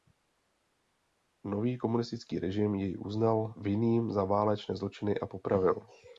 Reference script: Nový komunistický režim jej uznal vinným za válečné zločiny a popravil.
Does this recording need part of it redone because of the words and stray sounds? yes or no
no